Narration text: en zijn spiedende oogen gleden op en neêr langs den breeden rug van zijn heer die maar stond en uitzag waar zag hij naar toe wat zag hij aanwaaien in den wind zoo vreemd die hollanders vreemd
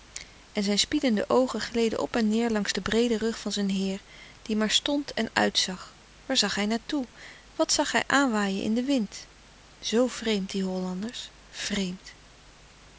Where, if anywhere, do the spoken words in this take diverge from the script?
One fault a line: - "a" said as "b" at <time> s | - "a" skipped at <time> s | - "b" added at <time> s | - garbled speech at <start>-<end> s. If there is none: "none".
none